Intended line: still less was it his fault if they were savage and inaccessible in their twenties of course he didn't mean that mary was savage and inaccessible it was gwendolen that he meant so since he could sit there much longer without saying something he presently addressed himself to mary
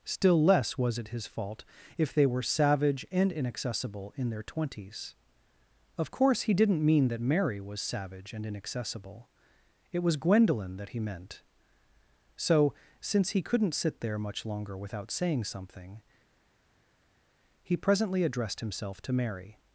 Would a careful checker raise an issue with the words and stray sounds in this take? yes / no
yes